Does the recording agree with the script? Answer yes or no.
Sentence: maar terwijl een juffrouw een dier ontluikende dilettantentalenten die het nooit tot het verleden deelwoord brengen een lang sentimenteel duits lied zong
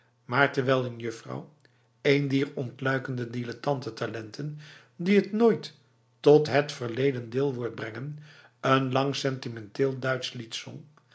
yes